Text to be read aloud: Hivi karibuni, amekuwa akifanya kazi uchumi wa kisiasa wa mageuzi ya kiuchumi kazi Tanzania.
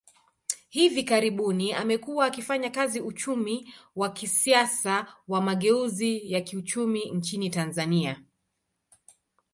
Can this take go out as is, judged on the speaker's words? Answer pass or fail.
fail